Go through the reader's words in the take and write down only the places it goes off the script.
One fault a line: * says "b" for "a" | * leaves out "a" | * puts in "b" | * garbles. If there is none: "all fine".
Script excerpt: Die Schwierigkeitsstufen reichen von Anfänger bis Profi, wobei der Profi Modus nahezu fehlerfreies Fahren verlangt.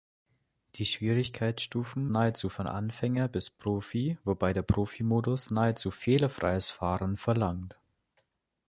* says "nahezu" for "reichen"